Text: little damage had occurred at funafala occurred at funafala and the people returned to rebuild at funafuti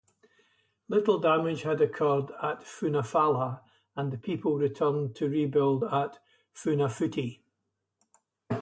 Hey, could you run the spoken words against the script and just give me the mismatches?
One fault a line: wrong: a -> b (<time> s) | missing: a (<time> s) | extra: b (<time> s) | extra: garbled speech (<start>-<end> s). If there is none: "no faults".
missing: occurred at funafala (3.6 s)